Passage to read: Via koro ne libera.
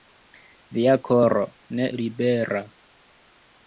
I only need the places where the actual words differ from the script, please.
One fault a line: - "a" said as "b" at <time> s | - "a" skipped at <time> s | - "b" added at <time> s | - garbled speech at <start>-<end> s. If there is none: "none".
none